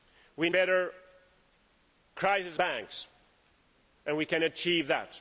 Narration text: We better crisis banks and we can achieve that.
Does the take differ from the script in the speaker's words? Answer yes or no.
no